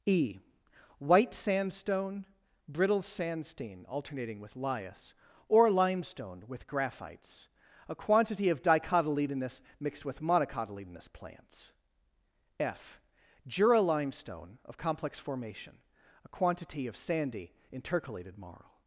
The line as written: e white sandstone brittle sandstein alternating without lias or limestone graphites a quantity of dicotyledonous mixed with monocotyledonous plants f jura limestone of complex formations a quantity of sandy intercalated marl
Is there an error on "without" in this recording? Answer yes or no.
yes